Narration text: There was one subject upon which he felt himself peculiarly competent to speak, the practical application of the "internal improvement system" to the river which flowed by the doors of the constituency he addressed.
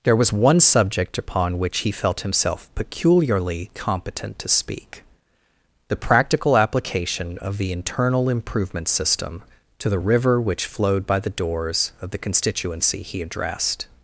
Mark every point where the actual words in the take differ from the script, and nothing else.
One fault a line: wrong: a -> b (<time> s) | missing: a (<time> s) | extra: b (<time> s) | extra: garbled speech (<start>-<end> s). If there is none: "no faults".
no faults